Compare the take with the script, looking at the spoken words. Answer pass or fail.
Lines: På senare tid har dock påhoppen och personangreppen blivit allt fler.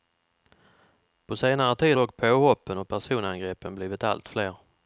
fail